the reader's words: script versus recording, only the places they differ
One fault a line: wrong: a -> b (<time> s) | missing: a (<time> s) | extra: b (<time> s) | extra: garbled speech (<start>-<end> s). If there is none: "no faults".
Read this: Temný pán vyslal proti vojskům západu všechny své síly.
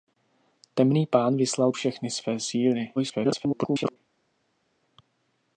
missing: proti vojskům západu (1.7 s)
extra: garbled speech (3.0-4.0 s)